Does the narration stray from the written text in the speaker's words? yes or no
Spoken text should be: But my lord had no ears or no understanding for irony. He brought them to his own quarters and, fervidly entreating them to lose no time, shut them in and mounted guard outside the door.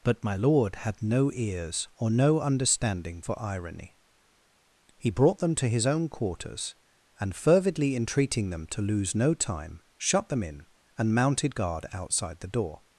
no